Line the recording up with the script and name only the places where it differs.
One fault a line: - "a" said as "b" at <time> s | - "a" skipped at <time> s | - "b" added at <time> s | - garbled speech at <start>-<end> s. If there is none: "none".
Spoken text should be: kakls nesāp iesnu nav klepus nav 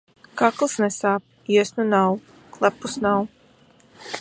none